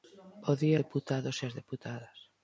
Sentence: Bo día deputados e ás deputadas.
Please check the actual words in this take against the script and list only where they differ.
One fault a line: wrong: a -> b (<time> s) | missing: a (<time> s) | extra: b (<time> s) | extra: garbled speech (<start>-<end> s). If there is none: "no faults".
no faults